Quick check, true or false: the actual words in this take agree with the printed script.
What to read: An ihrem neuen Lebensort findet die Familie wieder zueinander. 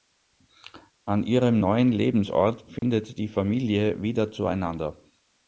true